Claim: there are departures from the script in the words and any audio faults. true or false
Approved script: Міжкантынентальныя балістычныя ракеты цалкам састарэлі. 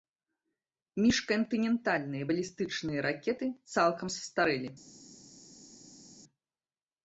false